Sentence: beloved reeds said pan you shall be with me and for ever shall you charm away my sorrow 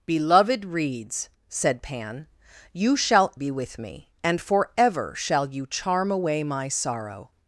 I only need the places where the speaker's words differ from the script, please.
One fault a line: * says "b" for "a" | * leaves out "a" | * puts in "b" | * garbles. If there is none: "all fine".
all fine